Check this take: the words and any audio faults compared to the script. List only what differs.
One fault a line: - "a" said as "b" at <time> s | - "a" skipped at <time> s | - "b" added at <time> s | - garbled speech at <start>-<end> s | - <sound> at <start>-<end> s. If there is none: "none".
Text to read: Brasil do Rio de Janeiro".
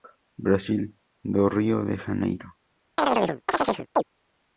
- chirp at 3.0-4.0 s